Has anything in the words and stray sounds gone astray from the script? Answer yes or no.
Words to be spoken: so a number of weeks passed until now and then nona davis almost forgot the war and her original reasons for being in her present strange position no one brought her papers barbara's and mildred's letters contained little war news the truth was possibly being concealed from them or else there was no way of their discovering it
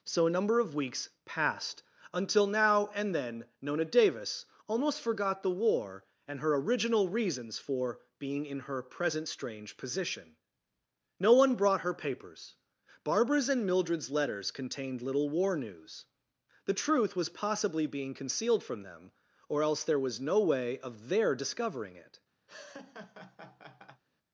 yes